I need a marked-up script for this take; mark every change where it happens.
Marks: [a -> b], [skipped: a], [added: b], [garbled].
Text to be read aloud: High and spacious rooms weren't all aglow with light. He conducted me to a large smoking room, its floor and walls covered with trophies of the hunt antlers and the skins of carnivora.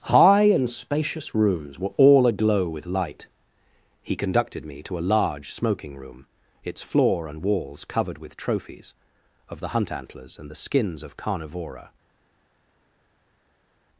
High and spacious rooms [weren't -> were] all aglow with light. He conducted me to a large smoking room, its floor and walls covered with trophies of the hunt antlers and the skins of carnivora.